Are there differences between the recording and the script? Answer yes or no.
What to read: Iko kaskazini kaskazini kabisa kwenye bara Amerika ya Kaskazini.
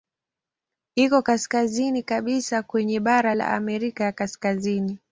yes